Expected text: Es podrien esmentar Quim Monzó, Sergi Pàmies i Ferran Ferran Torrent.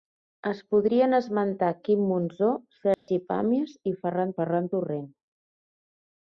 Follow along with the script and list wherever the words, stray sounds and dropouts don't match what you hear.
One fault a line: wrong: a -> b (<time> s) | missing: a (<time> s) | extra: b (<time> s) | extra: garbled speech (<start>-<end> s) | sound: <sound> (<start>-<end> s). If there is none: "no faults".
sound: dropout (2.9-3.1 s)